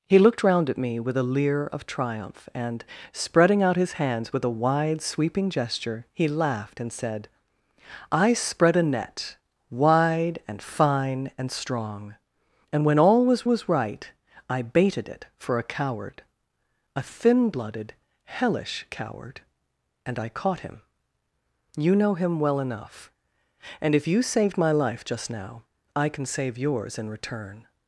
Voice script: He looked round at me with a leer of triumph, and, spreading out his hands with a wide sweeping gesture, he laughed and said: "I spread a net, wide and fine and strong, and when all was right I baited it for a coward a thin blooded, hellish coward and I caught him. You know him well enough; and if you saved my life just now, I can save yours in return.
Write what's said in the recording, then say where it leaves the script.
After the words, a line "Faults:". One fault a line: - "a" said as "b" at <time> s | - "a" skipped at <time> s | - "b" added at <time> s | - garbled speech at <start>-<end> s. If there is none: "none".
He looked round at me with a leer of triumph, and, spreading out his hands with a wide sweeping gesture, he laughed and said: "I spread a net, wide and fine and strong, and when all was was right I baited it for a coward a thin blooded, hellish coward and I caught him. You know him well enough; and if you saved my life just now, I can save yours in return.
Faults:
- "was" added at 13.4 s